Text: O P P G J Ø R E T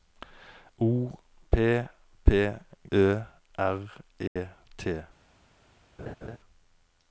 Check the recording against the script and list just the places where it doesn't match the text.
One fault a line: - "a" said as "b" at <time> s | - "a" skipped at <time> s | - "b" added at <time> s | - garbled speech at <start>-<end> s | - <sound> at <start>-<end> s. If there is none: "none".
- "G J" skipped at 2.5 s
- dropout at 4.3-4.4 s
- laugh at 6.0-6.4 s